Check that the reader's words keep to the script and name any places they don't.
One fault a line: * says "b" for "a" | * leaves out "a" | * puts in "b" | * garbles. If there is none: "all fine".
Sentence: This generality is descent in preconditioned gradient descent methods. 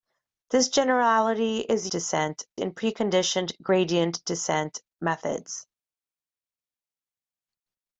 all fine